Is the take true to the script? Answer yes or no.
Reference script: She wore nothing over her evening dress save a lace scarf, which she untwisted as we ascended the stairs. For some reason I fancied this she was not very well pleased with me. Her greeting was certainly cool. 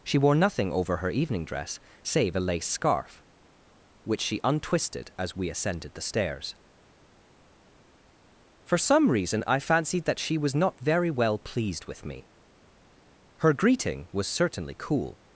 no